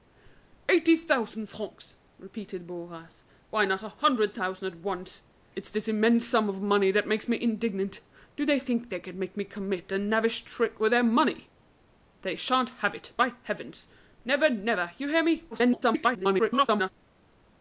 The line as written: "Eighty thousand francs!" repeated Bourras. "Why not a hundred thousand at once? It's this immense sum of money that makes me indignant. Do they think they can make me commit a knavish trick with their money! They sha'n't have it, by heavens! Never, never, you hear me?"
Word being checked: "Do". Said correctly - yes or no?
yes